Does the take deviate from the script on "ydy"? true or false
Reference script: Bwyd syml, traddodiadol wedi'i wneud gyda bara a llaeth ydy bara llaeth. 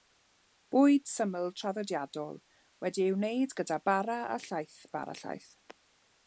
true